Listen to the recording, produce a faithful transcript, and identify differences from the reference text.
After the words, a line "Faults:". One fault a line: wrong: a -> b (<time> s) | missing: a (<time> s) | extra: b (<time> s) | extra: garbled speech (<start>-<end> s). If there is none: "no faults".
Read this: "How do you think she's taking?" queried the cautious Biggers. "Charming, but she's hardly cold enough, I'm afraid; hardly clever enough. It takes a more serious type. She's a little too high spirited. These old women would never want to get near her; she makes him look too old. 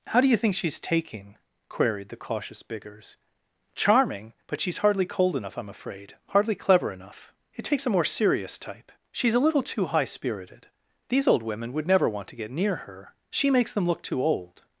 "How do you think she's taking?" queried the cautious Biggers. "Charming, but she's hardly cold enough, I'm afraid; hardly clever enough. It takes a more serious type. She's a little too high spirited. These old women would never want to get near her; she makes them look too old.
Faults:
wrong: him -> them (13.7 s)